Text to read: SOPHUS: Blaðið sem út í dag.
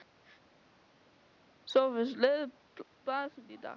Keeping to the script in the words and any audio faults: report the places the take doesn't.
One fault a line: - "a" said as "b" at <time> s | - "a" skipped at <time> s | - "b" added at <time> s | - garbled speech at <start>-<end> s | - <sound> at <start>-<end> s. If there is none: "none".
none